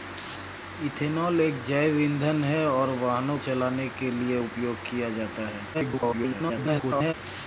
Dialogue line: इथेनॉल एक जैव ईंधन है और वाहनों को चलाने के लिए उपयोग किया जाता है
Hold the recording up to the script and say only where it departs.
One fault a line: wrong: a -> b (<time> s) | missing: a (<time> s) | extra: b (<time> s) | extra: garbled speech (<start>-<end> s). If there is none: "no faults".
missing: को (3.4 s)
extra: garbled speech (5.7-7.1 s)